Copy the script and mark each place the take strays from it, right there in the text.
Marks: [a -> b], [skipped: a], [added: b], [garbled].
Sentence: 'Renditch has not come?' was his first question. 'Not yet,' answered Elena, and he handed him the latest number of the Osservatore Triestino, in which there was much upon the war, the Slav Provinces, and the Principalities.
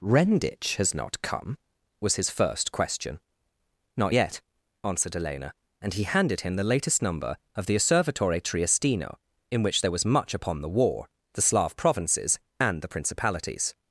'Renditch has not come?' was his first question. 'Not yet,' answered Elena, and he handed him the latest number of the Osservatore Triestino, in which there was much upon the war, the Slav Provinces, and the Principalities.